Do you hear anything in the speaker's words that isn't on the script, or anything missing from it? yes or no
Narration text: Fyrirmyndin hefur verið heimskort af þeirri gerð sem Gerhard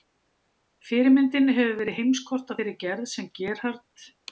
no